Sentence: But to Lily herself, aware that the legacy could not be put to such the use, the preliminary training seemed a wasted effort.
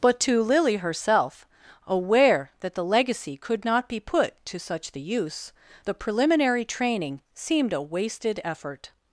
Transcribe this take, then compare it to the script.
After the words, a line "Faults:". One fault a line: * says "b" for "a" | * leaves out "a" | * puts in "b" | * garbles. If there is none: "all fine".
But to Lily herself, aware that the legacy could not be put to such the use, the preliminary training seemed a wasted effort.
Faults:
all fine